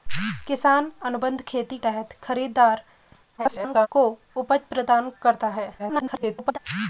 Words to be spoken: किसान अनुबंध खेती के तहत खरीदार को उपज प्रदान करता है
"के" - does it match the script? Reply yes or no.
no